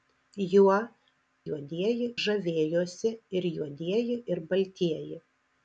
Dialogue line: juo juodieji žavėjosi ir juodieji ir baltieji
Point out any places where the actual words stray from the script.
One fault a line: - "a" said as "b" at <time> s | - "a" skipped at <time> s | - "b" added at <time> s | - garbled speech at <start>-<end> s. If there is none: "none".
none